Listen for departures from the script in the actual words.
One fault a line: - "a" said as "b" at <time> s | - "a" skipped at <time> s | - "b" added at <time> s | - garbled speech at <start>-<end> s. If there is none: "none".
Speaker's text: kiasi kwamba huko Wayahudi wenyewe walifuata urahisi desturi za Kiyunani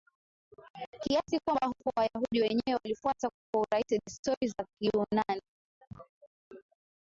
- "kwa" added at 3.5 s